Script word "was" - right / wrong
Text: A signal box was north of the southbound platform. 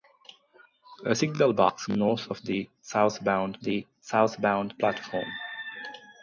wrong